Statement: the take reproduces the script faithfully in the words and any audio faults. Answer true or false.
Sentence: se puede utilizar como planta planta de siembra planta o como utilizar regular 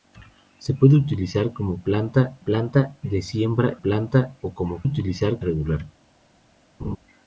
false